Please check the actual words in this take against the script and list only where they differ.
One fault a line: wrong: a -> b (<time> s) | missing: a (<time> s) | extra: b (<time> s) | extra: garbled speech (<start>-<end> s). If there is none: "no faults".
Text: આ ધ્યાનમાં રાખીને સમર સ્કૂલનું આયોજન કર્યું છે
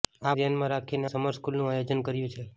no faults